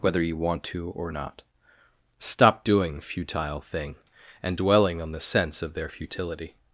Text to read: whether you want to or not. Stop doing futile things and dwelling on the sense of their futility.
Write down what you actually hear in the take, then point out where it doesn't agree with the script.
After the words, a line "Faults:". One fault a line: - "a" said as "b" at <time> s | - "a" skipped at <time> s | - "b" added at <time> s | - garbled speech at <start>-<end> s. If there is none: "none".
whether you want to or not. Stop doing futile thing and dwelling on the sense of their futility.
Faults:
- "things" said as "thing" at 3.6 s